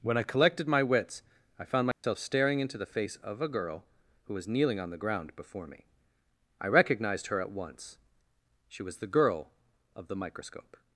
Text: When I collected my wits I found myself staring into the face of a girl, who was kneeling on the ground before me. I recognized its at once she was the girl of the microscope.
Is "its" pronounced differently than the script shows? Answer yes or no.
yes